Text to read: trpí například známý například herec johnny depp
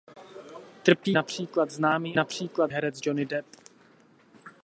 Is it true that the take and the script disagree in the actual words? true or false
false